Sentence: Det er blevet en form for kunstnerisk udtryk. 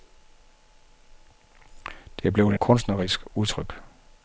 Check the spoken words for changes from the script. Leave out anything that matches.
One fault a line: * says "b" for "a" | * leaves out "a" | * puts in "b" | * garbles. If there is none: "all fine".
* leaves out "en form for"